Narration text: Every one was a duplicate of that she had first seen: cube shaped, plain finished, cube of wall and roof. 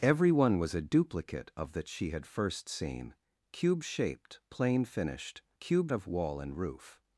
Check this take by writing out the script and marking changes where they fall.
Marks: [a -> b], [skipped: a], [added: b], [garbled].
Every one was a duplicate of that she had first seen: cube shaped, plain finished, cube of wall and roof.